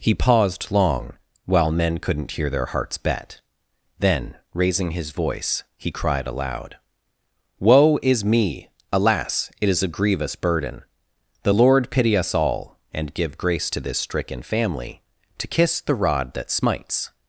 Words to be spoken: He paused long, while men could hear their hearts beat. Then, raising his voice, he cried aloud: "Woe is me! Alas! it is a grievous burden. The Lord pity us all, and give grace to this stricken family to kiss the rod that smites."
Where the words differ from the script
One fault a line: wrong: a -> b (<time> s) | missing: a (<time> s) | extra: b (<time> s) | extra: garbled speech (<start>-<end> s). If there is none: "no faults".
wrong: could -> couldn't (2.0 s)
wrong: beat -> bet (3.0 s)